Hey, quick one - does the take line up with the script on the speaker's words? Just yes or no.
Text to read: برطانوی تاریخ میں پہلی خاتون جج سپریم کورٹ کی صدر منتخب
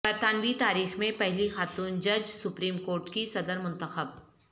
yes